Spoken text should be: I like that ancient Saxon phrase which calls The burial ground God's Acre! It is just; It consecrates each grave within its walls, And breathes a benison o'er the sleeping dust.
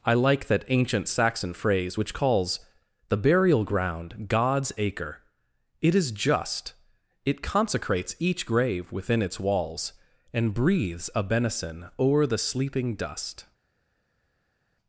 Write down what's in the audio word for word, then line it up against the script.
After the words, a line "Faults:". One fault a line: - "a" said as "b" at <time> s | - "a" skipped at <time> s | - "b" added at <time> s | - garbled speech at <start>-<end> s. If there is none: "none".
I like that ancient Saxon phrase which calls The burial ground God's Acre! It is just; It consecrates each grave within its walls, And breathes a benison o'er the sleeping dust.
Faults:
none